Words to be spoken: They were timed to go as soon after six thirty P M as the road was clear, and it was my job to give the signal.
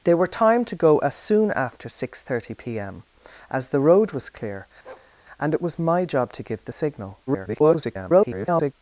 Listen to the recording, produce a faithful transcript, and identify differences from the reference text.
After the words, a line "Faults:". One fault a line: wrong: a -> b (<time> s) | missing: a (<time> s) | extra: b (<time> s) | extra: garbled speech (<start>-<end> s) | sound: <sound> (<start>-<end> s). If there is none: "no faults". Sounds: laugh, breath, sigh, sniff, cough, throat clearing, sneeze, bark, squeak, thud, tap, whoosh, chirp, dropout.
They were timed to go as soon after six thirty P M as the road was clear, and it was my job to give the signal. [garbled]
Faults:
sound: bark (4.8-5.1 s)
extra: garbled speech (7.3-8.7 s)